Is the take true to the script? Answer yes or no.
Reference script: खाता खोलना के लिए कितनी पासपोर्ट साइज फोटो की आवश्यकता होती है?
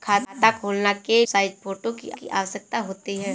no